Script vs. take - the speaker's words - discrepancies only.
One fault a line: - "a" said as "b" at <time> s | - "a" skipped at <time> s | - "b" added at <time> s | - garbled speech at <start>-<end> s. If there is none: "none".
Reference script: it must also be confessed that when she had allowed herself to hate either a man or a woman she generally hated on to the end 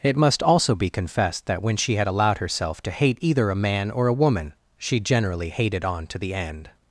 none